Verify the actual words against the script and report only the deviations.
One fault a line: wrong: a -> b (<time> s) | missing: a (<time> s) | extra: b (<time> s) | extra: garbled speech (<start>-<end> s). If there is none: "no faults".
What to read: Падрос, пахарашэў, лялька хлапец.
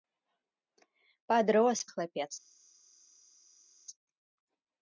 missing: пахарашэў лялька (1.8 s)